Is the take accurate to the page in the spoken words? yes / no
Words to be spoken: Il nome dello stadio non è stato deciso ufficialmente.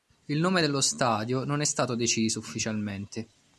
yes